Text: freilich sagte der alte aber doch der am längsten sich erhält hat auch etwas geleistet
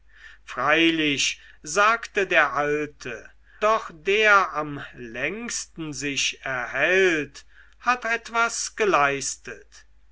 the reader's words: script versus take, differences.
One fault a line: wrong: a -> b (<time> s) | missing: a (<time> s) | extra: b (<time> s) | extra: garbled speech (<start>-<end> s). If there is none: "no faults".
missing: aber (3.3 s)
missing: auch (8.0 s)